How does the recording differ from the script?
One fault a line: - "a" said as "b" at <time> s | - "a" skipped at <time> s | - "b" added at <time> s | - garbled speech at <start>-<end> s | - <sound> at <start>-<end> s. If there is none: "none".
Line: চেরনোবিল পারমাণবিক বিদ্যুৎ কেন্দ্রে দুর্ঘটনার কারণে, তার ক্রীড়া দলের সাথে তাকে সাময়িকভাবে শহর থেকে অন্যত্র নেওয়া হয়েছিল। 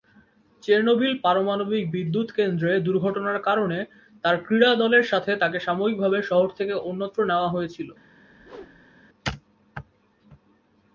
- whoosh at 8.2-9.0 s